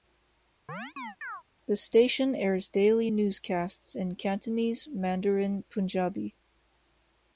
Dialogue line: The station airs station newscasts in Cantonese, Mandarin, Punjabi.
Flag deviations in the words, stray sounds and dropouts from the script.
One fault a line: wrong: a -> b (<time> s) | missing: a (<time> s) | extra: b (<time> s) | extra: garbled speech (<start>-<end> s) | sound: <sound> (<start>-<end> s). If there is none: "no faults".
sound: chirp (0.7-1.4 s)
wrong: station -> daily (2.7 s)